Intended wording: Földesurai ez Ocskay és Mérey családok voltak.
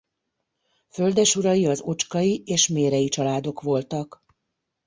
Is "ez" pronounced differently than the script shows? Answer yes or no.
yes